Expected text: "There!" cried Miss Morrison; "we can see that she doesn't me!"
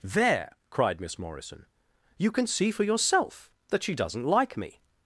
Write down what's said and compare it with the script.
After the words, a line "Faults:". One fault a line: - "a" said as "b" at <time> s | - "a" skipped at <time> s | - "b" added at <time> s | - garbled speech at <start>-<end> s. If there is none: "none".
"There!" cried Miss Morrison; "you can see for yourself that she doesn't like me!"
Faults:
- "we" said as "you" at 2.2 s
- "for yourself" added at 2.7 s
- "like" added at 4.2 s